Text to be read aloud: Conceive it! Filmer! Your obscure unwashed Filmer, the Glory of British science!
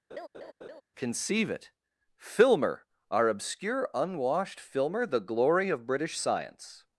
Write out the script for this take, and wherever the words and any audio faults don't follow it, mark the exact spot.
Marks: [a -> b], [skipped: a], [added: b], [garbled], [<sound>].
[laugh] Conceive it! Filmer! [Your -> Our] obscure unwashed Filmer, the Glory of British science!